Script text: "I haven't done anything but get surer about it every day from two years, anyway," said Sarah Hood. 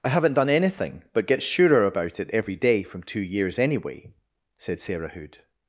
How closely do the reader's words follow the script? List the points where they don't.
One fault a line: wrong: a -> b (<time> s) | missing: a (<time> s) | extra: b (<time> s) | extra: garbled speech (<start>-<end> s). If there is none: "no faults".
no faults